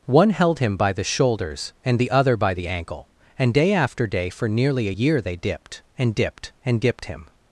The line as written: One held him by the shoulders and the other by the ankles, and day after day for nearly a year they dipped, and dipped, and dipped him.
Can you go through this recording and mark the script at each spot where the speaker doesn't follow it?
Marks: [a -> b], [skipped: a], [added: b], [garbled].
One held him by the shoulders and the other by the [ankles, -> ankle] and day after day for nearly a year they dipped, and dipped, and dipped him.